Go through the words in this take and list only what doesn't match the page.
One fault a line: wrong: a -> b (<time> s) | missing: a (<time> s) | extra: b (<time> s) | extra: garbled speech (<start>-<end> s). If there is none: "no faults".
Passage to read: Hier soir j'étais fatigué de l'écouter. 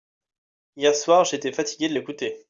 no faults